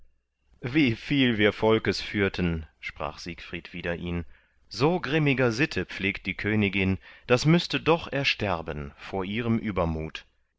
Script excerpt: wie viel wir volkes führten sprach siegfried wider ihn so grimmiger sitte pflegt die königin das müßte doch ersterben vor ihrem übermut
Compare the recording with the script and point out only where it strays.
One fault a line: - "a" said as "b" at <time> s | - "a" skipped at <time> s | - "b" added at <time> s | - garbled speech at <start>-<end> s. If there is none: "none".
none